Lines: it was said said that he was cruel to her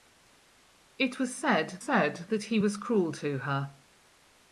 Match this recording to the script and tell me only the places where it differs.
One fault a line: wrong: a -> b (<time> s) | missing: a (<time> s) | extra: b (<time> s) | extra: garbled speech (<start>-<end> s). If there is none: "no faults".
no faults